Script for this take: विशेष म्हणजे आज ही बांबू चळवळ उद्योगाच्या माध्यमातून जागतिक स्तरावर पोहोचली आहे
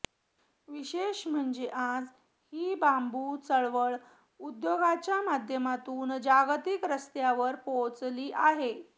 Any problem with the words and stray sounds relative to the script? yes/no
no